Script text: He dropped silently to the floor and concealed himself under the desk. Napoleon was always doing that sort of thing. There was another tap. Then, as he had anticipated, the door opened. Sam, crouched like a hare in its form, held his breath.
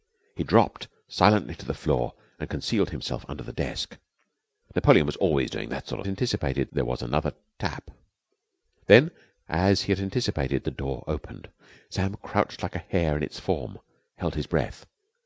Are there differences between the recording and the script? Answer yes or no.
yes